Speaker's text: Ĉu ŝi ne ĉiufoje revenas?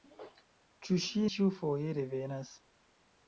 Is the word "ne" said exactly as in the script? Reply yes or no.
no